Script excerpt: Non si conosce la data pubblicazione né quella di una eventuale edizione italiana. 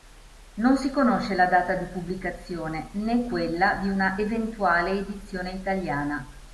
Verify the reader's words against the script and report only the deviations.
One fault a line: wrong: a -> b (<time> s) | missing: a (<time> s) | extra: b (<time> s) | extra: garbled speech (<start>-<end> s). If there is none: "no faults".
extra: di (1.8 s)